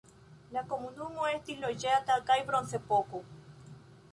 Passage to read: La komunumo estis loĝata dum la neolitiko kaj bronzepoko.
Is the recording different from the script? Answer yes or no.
yes